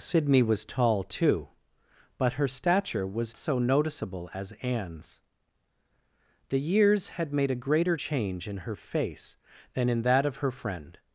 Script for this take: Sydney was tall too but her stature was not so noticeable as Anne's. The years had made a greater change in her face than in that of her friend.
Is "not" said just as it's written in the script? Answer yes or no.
no